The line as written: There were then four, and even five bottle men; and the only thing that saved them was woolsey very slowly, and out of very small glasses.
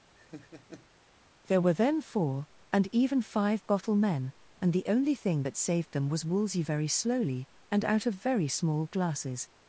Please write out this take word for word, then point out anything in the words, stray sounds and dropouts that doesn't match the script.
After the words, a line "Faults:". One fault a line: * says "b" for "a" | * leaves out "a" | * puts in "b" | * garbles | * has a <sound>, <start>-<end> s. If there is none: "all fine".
There were then four, and even five bottle men; and the only thing that saved them was woolsey very slowly, and out of very small glasses.
Faults:
* has a laugh, 0.1-0.9 s